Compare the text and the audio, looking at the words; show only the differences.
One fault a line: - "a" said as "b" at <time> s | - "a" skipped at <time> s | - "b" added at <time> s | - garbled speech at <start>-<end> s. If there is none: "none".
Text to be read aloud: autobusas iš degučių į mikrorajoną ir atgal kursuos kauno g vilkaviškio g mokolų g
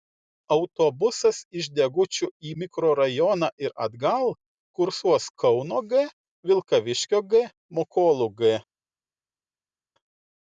none